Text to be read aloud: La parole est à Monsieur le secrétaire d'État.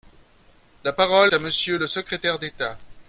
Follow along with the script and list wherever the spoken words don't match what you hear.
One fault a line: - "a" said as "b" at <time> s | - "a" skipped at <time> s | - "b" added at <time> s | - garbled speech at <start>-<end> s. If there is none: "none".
- "est" skipped at 1.3 s